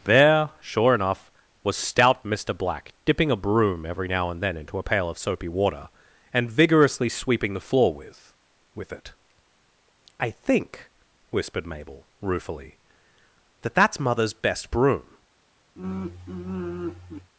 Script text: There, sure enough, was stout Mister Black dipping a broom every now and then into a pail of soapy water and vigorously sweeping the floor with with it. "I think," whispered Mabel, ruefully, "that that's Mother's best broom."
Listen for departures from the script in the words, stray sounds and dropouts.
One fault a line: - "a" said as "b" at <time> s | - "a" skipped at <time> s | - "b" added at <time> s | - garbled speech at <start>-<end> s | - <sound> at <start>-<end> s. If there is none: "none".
- sigh at 15.8-17.3 s